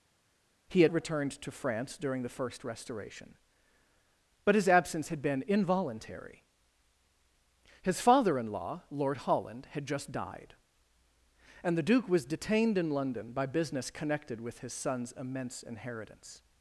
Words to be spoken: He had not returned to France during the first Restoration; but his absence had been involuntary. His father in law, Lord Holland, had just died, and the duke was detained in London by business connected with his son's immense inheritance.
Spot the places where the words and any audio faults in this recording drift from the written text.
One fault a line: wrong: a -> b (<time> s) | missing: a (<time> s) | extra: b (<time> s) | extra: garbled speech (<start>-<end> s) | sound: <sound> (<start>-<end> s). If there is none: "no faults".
missing: not (0.9 s)